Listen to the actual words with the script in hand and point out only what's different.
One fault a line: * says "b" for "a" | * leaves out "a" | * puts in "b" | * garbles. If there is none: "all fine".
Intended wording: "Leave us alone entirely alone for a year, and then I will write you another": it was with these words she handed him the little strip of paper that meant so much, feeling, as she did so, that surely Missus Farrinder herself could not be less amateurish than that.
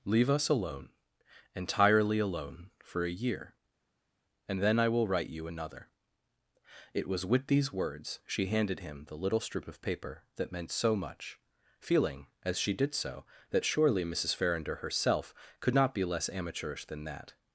all fine